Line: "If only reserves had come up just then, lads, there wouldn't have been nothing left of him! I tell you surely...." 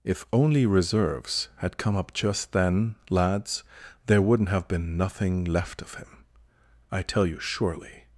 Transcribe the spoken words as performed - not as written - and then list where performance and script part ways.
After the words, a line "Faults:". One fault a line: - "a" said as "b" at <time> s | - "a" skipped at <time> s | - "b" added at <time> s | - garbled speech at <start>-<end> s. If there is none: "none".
"If only reserves had come up just then, lads, there wouldn't have been nothing left of him! I tell you surely...."
Faults:
none